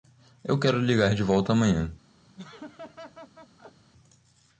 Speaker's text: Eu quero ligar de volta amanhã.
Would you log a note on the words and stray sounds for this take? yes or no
yes